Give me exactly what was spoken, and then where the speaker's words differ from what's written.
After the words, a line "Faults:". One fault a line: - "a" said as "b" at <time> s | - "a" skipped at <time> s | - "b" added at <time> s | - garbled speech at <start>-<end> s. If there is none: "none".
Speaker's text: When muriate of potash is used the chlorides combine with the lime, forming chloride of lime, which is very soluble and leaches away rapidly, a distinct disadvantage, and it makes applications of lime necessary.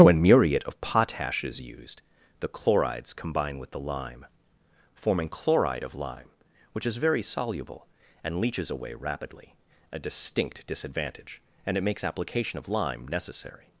When muriate of potash is used the chlorides combine with the lime, forming chloride of lime, which is very soluble and leaches away rapidly, a distinct disadvantage, and it makes application of lime necessary.
Faults:
- "applications" said as "application" at 12.0 s